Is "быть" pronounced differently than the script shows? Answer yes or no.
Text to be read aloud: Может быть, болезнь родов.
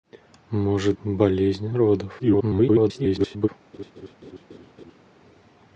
yes